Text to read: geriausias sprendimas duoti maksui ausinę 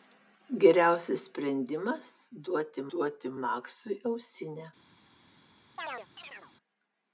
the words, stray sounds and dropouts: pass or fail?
fail